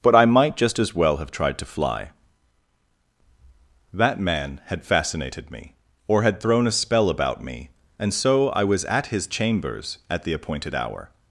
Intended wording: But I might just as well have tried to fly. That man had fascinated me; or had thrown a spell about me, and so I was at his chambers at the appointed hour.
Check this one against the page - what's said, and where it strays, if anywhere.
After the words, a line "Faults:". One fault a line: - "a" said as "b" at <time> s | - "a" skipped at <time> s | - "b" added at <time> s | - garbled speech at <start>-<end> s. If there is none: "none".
But I might just as well have tried to fly. That man had fascinated me; or had thrown a spell about me, and so I was at his chambers at the appointed hour.
Faults:
none